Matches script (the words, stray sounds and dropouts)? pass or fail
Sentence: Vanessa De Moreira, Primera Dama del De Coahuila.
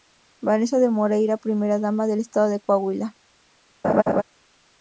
fail